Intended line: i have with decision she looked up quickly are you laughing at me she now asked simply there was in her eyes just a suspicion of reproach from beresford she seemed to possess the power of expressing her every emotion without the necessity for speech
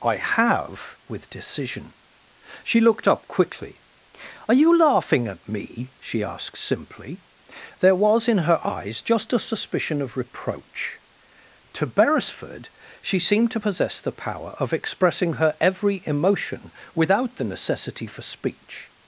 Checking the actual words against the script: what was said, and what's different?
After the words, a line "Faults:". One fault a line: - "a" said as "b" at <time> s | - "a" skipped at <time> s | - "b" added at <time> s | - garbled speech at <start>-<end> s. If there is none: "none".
i have with decision she looked up quickly are you laughing at me she asked simply there was in her eyes just a suspicion of reproach to beresford she seemed to possess the power of expressing her every emotion without the necessity for speech
Faults:
- "now" skipped at 6.2 s
- "from" said as "to" at 11.7 s